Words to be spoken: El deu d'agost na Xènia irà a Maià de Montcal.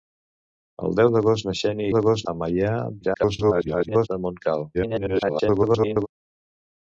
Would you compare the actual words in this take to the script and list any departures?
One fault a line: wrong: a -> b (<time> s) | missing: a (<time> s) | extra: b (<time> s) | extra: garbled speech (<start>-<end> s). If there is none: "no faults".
wrong: irà -> d'agost (1.9 s)
extra: garbled speech (3.0-4.1 s)
extra: garbled speech (4.7-6.1 s)